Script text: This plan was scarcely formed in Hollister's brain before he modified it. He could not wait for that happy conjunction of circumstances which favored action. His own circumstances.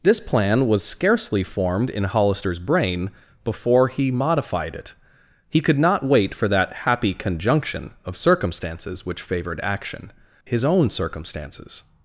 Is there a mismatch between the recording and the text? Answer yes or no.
no